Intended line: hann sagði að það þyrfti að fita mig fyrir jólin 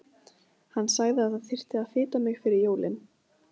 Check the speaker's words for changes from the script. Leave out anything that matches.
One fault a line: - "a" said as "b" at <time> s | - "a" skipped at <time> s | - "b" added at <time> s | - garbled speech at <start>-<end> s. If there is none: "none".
none